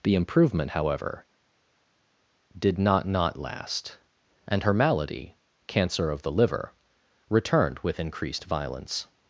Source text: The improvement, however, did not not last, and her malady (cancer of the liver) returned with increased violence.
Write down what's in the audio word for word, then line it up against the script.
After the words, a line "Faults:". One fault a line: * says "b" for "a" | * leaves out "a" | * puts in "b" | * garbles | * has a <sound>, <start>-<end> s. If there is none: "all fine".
The improvement, however, did not not last, and her malady (cancer of the liver) returned with increased violence.
Faults:
all fine